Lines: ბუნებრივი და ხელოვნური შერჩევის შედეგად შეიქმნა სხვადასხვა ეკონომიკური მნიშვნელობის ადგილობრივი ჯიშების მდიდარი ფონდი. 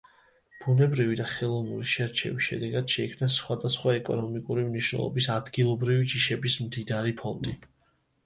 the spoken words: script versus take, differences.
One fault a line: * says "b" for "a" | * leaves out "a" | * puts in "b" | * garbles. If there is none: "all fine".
all fine